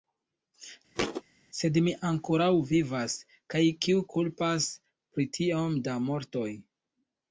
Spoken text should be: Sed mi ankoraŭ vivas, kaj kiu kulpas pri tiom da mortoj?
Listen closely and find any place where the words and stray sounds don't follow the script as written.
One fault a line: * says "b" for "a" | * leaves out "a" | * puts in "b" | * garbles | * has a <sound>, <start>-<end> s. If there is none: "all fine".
* has a thud, 0.9-1.2 s